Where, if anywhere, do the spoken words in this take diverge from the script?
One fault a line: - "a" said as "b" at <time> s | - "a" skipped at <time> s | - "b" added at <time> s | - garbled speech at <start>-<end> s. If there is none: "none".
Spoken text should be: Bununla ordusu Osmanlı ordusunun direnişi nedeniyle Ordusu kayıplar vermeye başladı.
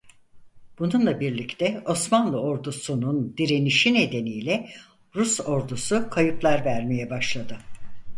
- "ordusu" said as "birlikte" at 1.2 s
- "Rus" added at 5.2 s